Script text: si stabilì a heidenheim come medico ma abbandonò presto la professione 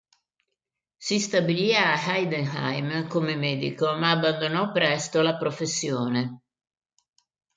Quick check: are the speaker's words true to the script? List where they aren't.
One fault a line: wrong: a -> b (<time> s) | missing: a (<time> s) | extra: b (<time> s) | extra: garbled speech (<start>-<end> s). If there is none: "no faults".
no faults